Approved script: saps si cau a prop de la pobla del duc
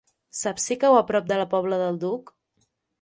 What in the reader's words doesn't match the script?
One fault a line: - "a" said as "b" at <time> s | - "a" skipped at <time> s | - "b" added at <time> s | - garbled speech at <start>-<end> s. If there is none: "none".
none